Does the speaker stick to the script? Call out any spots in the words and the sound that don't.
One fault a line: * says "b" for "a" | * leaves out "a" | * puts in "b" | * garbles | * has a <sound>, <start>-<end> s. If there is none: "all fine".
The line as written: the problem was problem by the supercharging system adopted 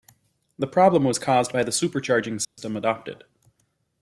* says "caused" for "problem"
* has a dropout, 2.4-2.6 s